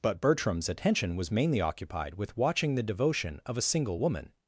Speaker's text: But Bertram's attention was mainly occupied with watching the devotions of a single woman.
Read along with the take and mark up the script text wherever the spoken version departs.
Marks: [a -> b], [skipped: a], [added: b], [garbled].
But Bertram's attention was mainly occupied with watching the [devotions -> devotion] of a single woman.